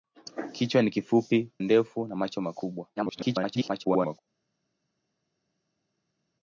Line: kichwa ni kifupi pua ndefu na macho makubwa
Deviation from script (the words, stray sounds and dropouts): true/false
true